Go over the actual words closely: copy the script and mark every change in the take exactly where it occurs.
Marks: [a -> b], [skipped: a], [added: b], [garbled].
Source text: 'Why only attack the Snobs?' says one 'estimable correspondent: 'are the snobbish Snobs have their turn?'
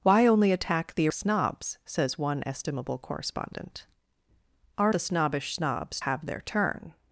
'Why only attack the Snobs?' says one 'estimable correspondent: 'are the snobbish Snobs have their turn?'